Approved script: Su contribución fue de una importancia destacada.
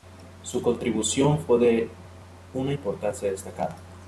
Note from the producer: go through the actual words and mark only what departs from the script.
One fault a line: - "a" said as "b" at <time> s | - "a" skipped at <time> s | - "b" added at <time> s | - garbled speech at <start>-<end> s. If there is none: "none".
none